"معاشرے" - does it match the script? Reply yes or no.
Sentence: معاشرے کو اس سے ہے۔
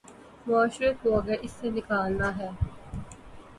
yes